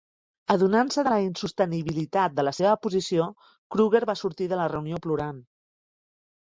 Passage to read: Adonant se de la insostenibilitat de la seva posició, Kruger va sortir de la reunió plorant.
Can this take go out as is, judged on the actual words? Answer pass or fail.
pass